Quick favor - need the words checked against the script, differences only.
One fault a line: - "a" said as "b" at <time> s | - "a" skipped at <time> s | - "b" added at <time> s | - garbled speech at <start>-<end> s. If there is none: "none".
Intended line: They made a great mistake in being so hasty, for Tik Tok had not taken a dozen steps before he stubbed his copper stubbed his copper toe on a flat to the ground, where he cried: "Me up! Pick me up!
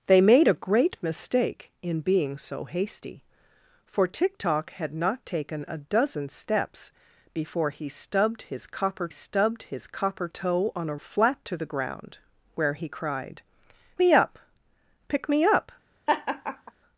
none